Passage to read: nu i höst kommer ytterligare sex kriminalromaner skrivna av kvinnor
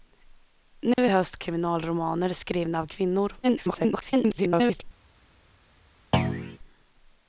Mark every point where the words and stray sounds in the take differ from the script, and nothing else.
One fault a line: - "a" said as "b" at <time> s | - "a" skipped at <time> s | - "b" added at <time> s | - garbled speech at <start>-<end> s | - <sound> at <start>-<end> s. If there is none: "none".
- dropout at 0.9-1.0 s
- "kommer ytterligare sex" skipped at 1.3 s
- garbled speech at 3.4-4.8 s
- thud at 6.1-6.6 s